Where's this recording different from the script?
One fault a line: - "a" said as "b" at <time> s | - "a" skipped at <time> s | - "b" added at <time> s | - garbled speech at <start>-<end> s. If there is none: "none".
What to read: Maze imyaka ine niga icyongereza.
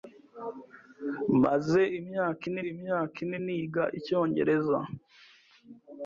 - "imyaka ine" added at 2.7 s